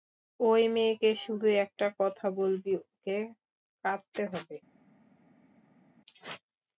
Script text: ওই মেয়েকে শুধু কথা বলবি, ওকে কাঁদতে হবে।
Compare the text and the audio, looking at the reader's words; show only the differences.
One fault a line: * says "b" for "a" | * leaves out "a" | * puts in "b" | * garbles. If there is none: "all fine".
* puts in "একটা"